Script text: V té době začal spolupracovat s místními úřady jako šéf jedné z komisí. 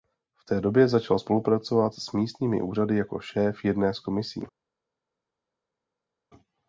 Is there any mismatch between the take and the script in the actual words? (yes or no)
no